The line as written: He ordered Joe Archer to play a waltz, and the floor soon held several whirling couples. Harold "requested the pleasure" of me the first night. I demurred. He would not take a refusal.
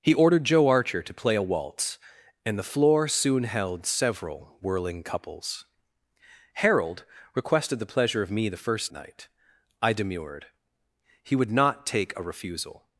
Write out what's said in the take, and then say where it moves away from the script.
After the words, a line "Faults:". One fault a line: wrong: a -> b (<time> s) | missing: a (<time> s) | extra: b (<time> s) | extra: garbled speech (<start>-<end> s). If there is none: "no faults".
He ordered Joe Archer to play a waltz, and the floor soon held several whirling couples. Harold "requested the pleasure" of me the first night. I demurred. He would not take a refusal.
Faults:
no faults